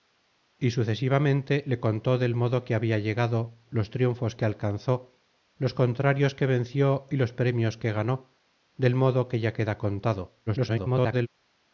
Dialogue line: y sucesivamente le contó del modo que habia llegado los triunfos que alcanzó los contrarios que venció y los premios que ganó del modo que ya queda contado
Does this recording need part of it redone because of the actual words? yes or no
yes